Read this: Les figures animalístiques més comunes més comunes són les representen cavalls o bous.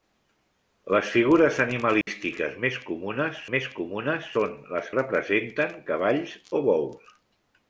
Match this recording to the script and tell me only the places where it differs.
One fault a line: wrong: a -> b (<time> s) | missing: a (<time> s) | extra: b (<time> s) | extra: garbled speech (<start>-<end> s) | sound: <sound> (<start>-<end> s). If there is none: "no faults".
sound: dropout (2.0-2.1 s)